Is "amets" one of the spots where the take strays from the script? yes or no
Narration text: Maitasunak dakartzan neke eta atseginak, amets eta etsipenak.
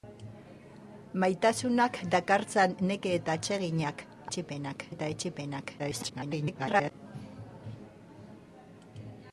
yes